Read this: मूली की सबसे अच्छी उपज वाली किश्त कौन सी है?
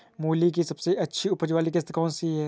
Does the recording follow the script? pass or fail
pass